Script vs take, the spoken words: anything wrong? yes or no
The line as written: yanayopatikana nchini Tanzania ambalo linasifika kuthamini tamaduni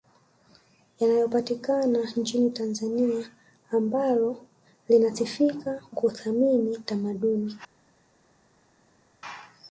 no